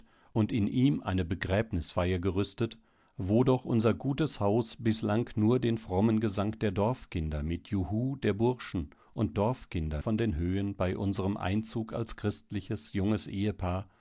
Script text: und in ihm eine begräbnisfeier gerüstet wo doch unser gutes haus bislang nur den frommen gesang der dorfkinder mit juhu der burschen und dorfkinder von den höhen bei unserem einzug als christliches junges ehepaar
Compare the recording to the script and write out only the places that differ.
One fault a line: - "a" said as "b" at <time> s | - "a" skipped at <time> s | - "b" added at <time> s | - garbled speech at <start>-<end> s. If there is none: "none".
none